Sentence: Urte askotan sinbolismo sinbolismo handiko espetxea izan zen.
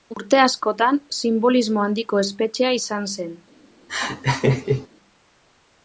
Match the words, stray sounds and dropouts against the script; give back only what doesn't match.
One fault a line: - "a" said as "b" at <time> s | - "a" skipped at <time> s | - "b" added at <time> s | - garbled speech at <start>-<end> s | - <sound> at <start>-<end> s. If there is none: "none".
- "sinbolismo" skipped at 1.9 s
- laugh at 3.9-4.9 s